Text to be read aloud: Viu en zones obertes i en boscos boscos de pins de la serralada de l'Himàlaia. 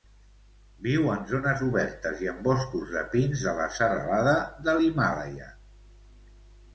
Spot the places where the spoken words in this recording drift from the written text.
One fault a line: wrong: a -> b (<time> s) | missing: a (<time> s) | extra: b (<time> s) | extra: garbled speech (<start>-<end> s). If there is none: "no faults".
missing: boscos (2.9 s)